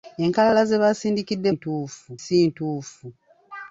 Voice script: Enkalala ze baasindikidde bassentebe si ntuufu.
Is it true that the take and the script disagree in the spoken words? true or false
true